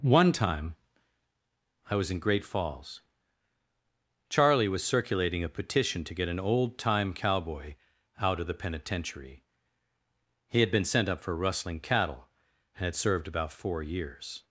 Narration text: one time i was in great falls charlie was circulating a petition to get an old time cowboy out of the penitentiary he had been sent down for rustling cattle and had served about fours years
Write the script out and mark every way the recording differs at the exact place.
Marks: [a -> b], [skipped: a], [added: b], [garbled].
one time i was in great falls charlie was circulating a petition to get an old time cowboy out of the penitentiary he had been sent [down -> up] for rustling cattle and had served about [fours -> four] years